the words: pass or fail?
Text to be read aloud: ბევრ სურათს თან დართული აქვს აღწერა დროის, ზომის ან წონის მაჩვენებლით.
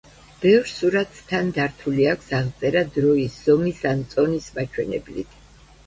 pass